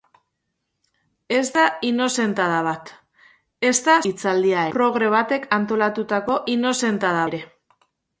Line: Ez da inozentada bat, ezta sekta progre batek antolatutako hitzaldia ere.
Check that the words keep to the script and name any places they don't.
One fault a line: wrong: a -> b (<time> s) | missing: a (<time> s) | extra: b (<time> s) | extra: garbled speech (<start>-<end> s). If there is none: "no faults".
wrong: sekta -> hitzaldia (4.1 s)
wrong: hitzaldia -> inozentada (6.5 s)